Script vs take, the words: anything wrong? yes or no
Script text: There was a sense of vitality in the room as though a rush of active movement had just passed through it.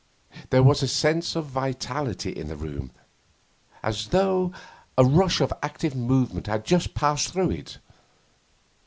no